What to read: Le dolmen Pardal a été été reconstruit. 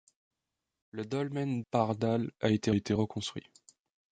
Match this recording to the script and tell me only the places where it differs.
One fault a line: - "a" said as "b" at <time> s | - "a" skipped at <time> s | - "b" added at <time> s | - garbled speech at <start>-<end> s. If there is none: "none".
none